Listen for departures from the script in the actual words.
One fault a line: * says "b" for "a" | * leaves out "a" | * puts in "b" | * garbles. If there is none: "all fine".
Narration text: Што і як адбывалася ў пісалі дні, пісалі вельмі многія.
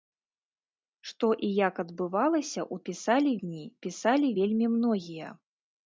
all fine